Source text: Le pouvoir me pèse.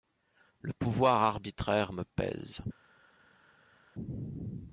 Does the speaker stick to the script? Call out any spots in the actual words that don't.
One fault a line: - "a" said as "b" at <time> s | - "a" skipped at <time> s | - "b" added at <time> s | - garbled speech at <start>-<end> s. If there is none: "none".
- "arbitraire" added at 1.2 s